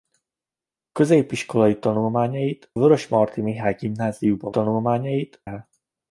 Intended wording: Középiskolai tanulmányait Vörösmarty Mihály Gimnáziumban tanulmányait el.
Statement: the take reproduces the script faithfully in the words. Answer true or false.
true